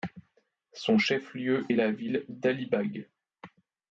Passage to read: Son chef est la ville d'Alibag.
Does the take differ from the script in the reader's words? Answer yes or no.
yes